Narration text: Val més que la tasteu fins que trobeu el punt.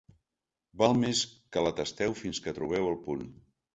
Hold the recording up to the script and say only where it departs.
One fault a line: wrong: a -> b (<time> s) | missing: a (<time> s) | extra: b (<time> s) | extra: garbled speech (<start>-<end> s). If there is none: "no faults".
no faults